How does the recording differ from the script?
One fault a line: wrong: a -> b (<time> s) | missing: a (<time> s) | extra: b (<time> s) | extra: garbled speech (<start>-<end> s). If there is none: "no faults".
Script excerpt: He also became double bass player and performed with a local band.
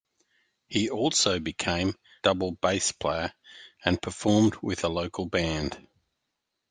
no faults